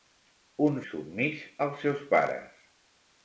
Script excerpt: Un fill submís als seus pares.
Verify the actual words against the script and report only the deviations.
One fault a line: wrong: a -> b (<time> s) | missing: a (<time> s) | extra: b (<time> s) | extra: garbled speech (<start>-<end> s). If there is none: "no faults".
missing: fill (0.8 s)